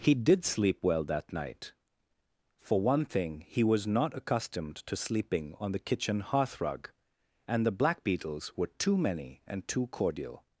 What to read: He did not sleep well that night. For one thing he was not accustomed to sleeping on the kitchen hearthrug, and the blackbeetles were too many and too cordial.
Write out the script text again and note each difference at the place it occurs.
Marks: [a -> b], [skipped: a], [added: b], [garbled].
He did [skipped: not] sleep well that night. For one thing he was not accustomed to sleeping on the kitchen hearthrug, and the blackbeetles were too many and too cordial.